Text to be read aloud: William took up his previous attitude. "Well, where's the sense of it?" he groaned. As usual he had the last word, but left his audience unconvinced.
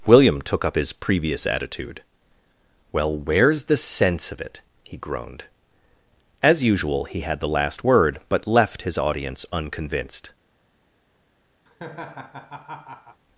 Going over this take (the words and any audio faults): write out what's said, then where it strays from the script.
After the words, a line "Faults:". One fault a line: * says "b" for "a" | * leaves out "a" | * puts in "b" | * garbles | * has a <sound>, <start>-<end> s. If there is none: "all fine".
William took up his previous attitude. "Well, where's the sense of it?" he groaned. As usual he had the last word, but left his audience unconvinced.
Faults:
* has a laugh, 11.7-13.2 s